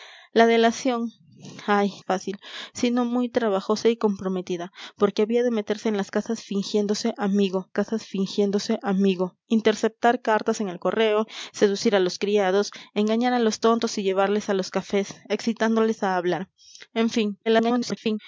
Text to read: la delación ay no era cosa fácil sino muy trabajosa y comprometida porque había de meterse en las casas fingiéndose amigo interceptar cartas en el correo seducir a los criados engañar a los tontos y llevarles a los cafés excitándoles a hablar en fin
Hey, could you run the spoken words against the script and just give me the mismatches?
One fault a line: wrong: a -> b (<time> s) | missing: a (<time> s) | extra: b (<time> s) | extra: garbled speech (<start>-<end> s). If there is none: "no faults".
missing: no era cosa (1.9 s)
extra: casas fingiéndose amigo (7.7 s)
extra: garbled speech (17.5-18.2 s)